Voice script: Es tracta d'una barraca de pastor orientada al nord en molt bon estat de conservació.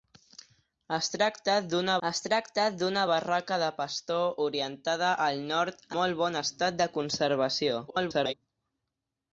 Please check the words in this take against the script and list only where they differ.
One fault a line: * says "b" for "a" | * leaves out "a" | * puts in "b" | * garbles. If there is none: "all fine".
* puts in "es tracta d'una"
* leaves out "en"
* garbles